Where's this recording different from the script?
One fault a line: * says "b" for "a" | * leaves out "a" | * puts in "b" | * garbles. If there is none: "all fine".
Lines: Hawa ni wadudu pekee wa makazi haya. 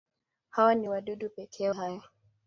* leaves out "wa makazi"